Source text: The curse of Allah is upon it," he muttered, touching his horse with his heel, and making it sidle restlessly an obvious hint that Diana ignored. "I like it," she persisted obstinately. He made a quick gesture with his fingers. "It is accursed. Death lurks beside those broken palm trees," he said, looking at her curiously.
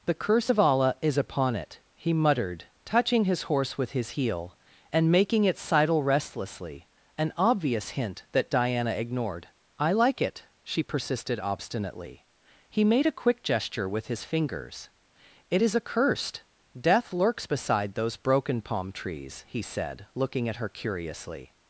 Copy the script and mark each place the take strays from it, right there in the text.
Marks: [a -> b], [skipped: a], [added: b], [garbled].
The curse of Allah is upon it," he muttered, touching his horse with his heel, and making it sidle restlessly an obvious hint that Diana ignored. "I like it," she persisted obstinately. He made a quick gesture with his fingers. "It is accursed. Death lurks beside those broken palm trees," he said, looking at her curiously.